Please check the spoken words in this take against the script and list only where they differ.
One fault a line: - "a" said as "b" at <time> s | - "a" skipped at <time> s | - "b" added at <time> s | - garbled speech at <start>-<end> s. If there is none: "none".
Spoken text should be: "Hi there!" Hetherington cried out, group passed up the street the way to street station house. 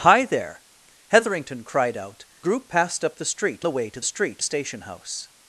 none